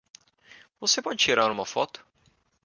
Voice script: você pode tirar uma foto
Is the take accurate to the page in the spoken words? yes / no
yes